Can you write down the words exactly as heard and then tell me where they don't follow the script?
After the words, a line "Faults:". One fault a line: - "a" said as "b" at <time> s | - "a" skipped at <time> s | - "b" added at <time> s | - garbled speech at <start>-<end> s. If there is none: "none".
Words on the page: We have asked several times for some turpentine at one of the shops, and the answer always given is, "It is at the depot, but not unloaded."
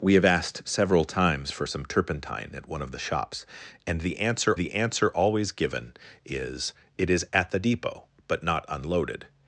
We have asked several times for some turpentine at one of the shops, and the answer the answer always given is, "It is at the depot, but not unloaded."
Faults:
- "the answer" added at 4.5 s